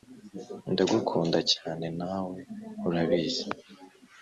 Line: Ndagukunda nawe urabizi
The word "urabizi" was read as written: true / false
true